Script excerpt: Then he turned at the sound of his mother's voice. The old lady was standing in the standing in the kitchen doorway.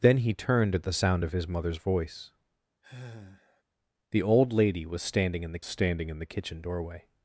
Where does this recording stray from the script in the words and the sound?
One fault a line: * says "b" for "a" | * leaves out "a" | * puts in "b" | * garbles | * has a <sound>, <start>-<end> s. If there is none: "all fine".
* has a sigh, 2.8-3.6 s